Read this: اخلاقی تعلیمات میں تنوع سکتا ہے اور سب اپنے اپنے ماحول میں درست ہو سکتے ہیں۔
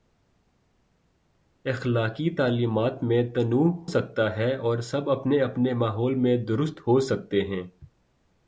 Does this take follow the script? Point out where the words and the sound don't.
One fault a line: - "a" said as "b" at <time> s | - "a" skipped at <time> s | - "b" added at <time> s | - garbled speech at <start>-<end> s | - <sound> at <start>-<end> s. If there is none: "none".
none